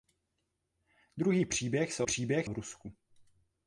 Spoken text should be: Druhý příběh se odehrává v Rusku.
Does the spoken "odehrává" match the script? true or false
false